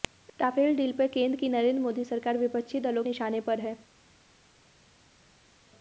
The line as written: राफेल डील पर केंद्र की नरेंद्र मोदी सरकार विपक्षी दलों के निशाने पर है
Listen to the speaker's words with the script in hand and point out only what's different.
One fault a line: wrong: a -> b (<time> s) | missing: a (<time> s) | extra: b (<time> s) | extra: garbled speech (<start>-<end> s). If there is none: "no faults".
missing: के (3.0 s)